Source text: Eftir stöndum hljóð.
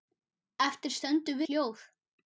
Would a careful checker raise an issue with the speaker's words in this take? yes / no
no